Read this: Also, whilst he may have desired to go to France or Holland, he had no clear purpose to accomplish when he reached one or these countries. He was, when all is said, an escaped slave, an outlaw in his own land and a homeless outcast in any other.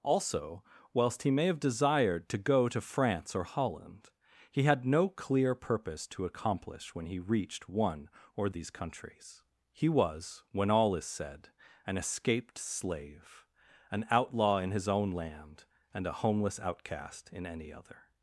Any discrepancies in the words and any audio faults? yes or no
no